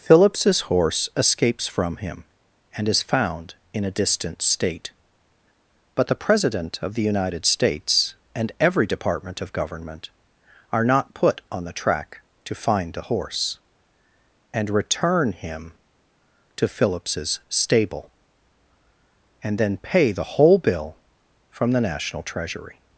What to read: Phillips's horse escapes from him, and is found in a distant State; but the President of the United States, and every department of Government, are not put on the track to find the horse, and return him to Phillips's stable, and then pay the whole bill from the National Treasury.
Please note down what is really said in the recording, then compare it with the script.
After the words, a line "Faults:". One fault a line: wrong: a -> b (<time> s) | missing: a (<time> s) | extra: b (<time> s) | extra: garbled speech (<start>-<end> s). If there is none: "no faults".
Phillips's horse escapes from him, and is found in a distant State; but the President of the United States, and every department of Government, are not put on the track to find the horse, and return him to Phillips's stable, and then pay the whole bill from the National Treasury.
Faults:
no faults